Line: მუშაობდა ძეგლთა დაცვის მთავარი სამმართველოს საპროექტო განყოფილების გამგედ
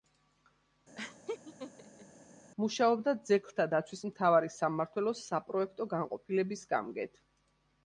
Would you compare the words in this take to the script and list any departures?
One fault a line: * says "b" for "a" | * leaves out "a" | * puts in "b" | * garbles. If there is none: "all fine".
all fine